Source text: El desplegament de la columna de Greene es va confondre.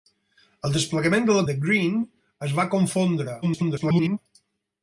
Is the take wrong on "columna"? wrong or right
wrong